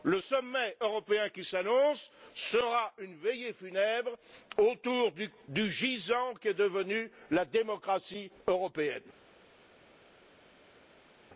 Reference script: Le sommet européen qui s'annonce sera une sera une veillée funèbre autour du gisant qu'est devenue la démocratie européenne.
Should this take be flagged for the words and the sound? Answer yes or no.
yes